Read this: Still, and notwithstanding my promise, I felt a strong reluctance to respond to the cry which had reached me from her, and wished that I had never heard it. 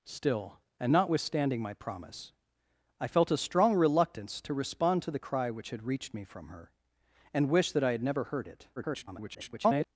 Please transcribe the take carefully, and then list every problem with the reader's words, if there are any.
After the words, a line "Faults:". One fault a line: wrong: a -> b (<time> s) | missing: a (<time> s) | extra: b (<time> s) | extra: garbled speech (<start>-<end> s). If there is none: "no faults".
Still, and notwithstanding my promise, I felt a strong reluctance to respond to the cry which had reached me from her, and wished that I had never heard it. [garbled]
Faults:
extra: garbled speech (8.8-9.9 s)